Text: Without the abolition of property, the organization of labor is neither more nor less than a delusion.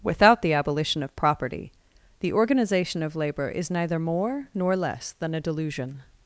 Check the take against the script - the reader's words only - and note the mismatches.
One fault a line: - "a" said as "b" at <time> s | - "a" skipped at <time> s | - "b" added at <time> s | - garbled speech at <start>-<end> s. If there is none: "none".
none